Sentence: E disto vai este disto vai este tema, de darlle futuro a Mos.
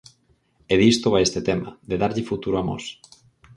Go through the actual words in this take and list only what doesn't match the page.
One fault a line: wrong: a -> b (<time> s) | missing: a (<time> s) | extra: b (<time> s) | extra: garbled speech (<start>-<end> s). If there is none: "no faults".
missing: disto vai este (1.4 s)